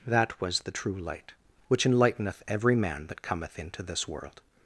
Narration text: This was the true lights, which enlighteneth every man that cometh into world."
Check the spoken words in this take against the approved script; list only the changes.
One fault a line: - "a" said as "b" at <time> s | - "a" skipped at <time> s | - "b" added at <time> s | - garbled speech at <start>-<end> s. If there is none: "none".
- "This" said as "That" at 0.1 s
- "lights" said as "light" at 1.0 s
- "this" added at 3.8 s